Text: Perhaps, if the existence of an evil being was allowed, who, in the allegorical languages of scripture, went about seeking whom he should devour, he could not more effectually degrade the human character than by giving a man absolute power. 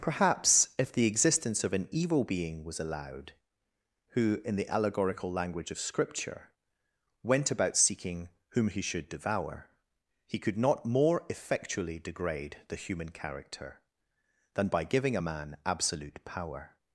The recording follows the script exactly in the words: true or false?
false